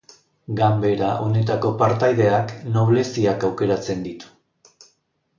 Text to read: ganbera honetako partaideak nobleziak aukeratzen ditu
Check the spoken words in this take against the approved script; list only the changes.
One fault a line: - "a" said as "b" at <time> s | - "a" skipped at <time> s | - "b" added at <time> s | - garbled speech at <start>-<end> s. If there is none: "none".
none